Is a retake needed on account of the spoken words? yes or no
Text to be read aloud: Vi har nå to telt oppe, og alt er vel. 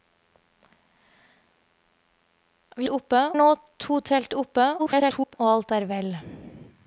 yes